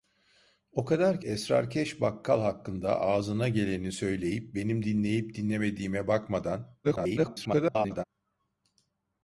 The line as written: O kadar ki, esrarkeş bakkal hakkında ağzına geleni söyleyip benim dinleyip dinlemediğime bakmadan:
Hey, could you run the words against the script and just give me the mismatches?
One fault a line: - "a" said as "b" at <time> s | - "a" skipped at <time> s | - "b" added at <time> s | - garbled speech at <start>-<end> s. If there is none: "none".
- "ki" skipped at 1.2 s
- garbled speech at 6.8-8.0 s